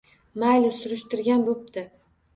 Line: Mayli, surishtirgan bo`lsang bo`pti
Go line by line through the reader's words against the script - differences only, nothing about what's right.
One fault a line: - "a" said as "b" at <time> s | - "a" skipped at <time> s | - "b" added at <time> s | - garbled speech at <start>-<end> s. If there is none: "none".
- "bo`lsang" skipped at 1.5 s